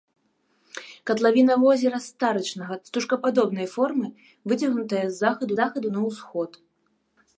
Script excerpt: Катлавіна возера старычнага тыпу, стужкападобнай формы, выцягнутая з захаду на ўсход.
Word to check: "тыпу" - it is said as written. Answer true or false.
false